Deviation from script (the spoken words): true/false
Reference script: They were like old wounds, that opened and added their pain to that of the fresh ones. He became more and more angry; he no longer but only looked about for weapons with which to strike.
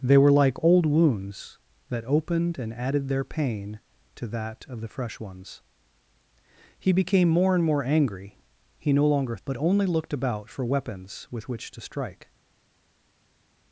false